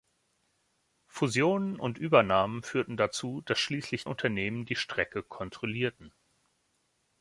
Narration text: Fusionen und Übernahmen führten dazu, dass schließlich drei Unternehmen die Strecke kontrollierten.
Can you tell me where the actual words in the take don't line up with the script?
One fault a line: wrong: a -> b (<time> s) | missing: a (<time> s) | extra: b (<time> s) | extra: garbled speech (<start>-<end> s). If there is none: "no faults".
missing: drei (4.1 s)